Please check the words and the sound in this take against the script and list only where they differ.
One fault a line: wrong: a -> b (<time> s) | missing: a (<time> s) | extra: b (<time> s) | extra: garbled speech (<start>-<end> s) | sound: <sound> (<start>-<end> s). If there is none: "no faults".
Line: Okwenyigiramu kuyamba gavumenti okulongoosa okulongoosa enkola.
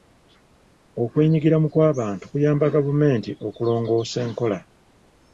extra: kw'abantu (1.7 s)
missing: okulongoosa (4.2 s)